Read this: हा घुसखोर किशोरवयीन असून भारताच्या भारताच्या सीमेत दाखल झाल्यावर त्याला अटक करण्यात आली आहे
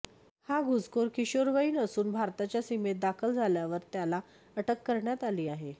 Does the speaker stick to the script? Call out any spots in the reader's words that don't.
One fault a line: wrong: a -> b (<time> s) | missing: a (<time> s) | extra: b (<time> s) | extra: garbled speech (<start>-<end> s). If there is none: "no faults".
missing: भारताच्या (2.6 s)